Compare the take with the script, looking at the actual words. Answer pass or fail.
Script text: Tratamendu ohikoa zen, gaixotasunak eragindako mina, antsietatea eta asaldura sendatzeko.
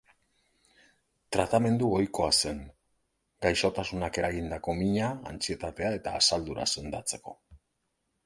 pass